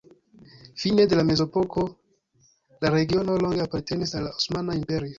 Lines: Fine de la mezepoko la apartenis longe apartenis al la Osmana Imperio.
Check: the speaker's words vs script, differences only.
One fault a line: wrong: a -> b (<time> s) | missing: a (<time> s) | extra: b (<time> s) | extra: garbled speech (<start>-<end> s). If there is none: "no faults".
wrong: apartenis -> regiono (3.0 s)